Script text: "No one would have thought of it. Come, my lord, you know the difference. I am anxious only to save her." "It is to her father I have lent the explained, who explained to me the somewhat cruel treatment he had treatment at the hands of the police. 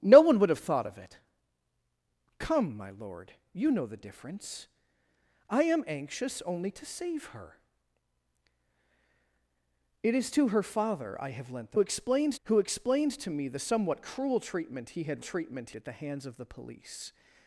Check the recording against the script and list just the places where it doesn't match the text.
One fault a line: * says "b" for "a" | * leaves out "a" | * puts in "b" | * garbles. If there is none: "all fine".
all fine